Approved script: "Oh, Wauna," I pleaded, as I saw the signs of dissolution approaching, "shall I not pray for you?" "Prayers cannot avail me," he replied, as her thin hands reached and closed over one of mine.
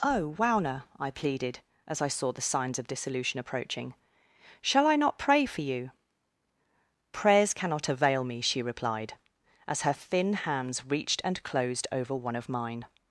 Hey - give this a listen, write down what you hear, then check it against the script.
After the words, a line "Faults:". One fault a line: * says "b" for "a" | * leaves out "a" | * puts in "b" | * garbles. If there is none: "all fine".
"Oh, Wauna," I pleaded, as I saw the signs of dissolution approaching, "shall I not pray for you?" "Prayers cannot avail me," she replied, as her thin hands reached and closed over one of mine.
Faults:
* says "she" for "he"